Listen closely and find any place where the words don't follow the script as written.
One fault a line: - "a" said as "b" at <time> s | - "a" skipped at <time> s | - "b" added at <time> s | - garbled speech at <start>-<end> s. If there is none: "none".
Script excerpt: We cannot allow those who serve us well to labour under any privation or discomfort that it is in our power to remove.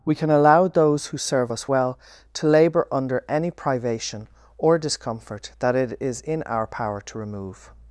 - "cannot" said as "can" at 0.1 s